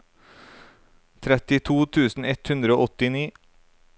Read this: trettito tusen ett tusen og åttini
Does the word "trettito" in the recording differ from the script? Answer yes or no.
no